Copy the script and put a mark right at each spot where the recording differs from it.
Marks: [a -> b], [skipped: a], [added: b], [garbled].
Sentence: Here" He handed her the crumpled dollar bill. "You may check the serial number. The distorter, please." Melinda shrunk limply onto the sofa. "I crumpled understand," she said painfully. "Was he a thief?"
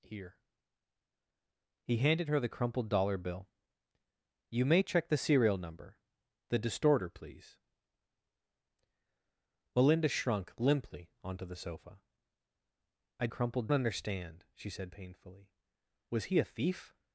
Here" He handed her the crumpled dollar bill. "You may check the serial number. The distorter, please." Melinda shrunk limply onto the sofa. "I crumpled understand," she said painfully. "Was he a thief?"